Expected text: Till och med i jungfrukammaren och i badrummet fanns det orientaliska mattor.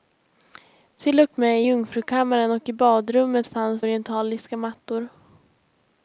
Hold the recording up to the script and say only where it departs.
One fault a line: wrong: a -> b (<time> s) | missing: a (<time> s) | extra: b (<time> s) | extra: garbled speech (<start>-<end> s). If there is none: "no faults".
missing: det (3.8 s)